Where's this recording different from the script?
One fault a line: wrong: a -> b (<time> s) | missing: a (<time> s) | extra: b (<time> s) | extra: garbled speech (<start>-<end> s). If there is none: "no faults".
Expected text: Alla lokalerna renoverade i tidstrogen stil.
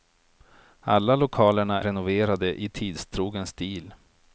no faults